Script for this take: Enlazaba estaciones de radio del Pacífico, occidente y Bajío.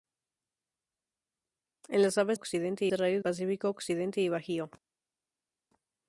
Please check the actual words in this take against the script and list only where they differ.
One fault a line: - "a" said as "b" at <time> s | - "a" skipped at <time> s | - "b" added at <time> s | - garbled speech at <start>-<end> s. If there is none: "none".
- "estaciones" said as "occidente" at 2.3 s
- "del" skipped at 3.2 s